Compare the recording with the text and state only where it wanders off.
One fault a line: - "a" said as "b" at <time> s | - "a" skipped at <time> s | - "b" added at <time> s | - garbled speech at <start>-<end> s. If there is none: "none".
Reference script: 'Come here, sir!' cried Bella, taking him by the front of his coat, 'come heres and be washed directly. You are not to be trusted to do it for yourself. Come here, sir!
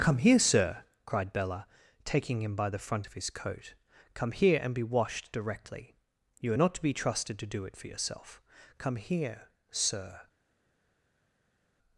- "heres" said as "here" at 4.3 s